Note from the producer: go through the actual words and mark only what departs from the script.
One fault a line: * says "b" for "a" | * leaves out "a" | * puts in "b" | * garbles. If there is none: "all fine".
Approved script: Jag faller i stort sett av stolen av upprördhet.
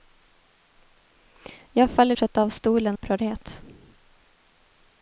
* leaves out "i stort"
* leaves out "av"